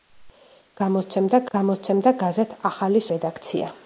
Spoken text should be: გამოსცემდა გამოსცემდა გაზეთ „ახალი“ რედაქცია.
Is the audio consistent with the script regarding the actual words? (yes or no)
yes